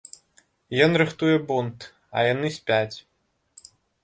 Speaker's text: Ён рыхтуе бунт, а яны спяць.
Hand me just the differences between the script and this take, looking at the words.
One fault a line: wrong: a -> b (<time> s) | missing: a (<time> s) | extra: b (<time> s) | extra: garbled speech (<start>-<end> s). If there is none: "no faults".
no faults